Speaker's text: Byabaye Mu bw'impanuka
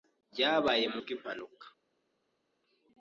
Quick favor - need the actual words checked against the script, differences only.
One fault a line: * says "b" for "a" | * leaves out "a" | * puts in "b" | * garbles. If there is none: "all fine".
all fine